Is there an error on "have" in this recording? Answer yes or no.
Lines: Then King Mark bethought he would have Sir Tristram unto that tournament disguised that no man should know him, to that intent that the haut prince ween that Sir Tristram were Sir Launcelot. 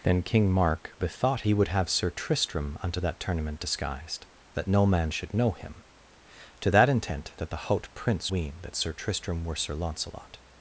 no